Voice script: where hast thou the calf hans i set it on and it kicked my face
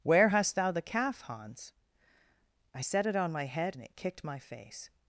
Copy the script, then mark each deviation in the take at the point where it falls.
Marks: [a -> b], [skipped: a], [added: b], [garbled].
where hast thou the calf hans i set it on [added: my head] and it kicked my face